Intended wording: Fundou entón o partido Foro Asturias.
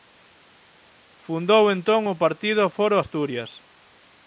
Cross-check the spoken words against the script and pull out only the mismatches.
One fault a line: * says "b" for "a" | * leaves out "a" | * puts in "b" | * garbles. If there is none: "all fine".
all fine